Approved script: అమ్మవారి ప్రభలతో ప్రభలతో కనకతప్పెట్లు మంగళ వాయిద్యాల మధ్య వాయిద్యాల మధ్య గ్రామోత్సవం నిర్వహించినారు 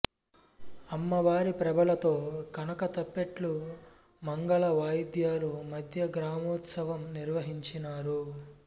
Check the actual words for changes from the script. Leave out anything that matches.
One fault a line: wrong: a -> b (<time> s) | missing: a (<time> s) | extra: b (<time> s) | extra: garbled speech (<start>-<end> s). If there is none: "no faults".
missing: ప్రభలతో (2.1 s)
missing: వాయిద్యాల మధ్య (6.1 s)